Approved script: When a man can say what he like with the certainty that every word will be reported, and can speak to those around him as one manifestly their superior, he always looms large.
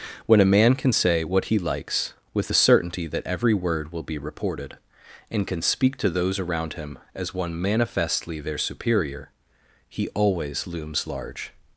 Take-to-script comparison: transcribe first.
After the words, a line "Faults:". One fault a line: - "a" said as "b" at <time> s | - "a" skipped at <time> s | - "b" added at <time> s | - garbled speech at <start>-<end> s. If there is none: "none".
When a man can say what he likes with the certainty that every word will be reported, and can speak to those around him as one manifestly their superior, he always looms large.
Faults:
- "like" said as "likes" at 1.6 s